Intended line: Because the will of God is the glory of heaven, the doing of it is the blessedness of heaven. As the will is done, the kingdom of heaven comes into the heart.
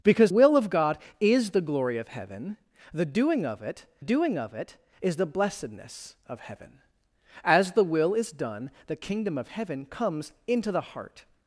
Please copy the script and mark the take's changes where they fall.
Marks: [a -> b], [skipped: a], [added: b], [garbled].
Because [skipped: the] will of God is the glory of heaven, the doing of it [added: doing of it] is the blessedness of heaven. As the will is done, the kingdom of heaven comes into the heart.